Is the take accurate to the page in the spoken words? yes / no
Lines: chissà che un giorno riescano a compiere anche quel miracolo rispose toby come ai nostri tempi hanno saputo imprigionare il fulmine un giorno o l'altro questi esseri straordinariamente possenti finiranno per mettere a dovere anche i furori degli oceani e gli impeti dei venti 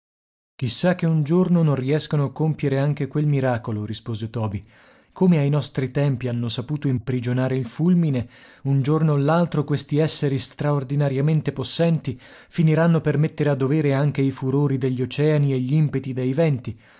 no